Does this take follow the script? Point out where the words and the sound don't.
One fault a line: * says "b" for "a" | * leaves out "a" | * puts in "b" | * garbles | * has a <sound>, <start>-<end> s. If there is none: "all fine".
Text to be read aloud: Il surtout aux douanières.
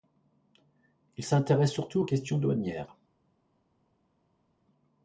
* puts in "s'intéresse"
* puts in "questions"